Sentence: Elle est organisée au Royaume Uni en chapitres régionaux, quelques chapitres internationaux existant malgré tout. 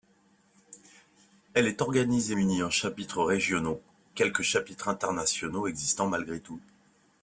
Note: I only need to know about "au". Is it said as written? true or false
false